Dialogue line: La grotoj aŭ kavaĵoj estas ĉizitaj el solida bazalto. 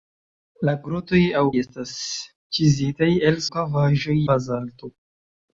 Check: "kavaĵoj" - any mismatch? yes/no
yes